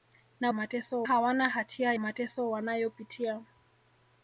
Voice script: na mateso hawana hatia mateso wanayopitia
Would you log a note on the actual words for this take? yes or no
no